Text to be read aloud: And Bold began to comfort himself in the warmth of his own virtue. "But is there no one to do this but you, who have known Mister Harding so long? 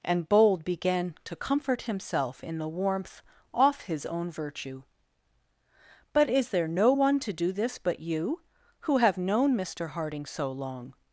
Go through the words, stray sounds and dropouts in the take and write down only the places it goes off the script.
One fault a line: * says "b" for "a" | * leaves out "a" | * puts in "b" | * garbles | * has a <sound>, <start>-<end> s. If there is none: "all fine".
* says "off" for "of"